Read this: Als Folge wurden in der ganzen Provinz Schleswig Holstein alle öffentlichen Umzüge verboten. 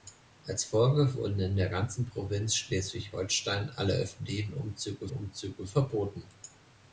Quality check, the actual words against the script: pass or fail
fail